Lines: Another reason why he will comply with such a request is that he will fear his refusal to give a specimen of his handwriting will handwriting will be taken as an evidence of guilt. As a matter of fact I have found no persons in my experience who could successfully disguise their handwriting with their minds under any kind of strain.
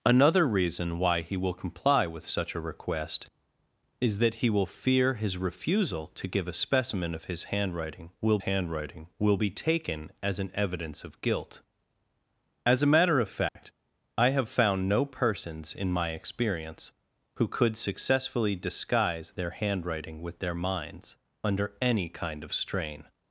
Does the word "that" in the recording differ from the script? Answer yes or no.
no